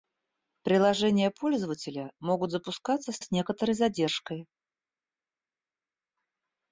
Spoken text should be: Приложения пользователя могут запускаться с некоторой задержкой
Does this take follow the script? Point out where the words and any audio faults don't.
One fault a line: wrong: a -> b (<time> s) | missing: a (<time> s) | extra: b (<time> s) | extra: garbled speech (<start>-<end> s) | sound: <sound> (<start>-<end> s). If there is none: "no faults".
extra: с (3.2 s)